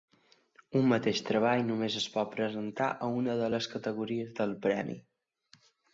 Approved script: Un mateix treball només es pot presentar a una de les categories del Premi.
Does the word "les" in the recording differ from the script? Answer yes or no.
no